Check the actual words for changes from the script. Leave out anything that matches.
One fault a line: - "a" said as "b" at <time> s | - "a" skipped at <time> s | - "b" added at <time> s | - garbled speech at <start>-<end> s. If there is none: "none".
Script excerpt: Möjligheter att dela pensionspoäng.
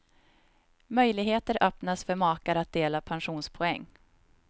- "öppnas för makar" added at 1.6 s